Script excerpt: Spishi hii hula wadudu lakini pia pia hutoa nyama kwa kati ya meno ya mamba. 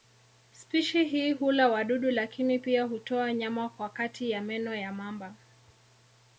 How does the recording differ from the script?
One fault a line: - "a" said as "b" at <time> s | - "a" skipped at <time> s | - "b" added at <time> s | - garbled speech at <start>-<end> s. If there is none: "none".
- "pia" skipped at 2.8 s